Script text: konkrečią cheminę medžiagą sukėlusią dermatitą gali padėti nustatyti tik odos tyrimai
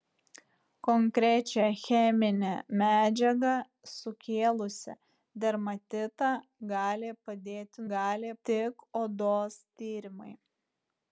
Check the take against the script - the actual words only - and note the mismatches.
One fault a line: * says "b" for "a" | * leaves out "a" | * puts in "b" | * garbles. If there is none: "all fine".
* says "gali" for "nustatyti"